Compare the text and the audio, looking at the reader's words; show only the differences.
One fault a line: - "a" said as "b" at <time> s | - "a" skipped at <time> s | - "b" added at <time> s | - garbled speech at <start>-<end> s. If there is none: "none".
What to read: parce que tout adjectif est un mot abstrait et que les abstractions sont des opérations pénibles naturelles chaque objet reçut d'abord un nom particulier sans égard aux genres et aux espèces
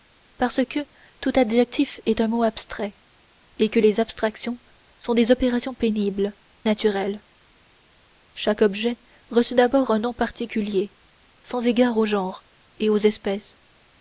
none